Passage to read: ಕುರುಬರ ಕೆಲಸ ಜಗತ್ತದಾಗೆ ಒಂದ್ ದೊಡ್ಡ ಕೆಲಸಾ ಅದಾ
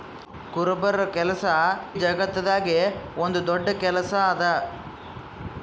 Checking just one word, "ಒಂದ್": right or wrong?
right